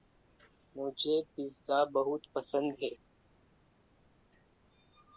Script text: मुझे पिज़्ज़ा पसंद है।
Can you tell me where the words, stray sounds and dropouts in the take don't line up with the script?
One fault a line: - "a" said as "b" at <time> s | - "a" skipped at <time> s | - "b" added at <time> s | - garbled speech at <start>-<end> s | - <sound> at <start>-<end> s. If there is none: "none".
- "बहुत" added at 1.9 s